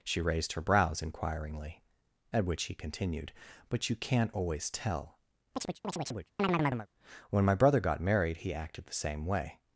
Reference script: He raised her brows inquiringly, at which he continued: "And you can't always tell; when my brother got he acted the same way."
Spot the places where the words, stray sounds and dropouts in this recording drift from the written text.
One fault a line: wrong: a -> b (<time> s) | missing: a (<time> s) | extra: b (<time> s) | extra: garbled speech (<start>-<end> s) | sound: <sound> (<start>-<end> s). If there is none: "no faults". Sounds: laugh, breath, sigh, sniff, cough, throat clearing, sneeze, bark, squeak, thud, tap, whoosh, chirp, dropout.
wrong: He -> She (0.0 s)
wrong: And -> But (3.7 s)
sound: chirp (5.5-6.9 s)
extra: married (8.0 s)